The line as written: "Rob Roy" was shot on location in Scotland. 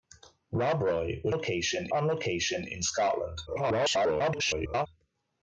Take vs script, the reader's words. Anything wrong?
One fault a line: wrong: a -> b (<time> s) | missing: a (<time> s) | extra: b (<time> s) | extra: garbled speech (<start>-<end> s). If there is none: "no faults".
wrong: shot -> location (1.3 s)
extra: garbled speech (3.5-4.9 s)